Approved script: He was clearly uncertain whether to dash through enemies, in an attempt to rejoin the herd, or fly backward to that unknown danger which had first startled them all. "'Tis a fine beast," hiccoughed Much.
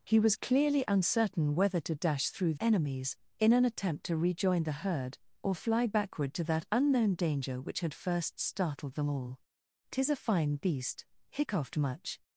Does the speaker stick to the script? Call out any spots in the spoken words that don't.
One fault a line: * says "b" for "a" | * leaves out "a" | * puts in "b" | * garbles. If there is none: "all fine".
all fine